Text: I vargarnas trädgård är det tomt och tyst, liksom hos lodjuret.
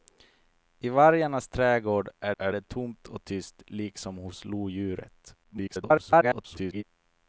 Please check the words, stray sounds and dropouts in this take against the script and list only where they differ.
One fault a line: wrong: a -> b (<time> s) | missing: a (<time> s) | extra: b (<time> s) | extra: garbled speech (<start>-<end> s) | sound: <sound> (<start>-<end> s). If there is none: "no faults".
extra: är (2.4 s)
extra: garbled speech (5.4-6.8 s)